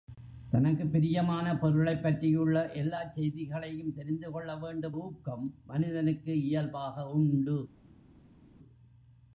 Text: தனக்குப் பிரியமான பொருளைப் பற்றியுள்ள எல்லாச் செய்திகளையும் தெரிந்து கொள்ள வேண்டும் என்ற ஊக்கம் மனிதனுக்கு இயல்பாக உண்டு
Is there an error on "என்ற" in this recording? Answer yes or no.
yes